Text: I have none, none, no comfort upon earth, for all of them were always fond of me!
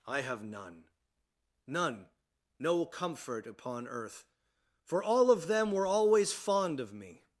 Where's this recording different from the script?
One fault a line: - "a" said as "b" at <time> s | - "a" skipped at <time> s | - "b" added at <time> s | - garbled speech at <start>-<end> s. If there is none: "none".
none